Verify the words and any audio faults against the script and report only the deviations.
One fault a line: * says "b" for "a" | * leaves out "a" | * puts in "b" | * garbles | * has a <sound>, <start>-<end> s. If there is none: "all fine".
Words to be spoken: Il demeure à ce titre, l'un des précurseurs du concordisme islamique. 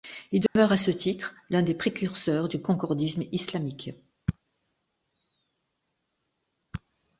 * has a dropout, 0.5-0.6 s